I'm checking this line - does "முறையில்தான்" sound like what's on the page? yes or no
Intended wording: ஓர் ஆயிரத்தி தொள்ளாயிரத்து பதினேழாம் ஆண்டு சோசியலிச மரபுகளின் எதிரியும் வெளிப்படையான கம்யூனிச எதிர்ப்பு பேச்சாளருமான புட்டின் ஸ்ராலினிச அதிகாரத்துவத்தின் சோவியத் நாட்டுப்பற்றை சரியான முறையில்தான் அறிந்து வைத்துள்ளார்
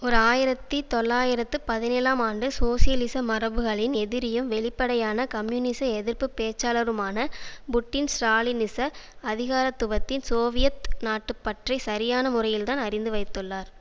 yes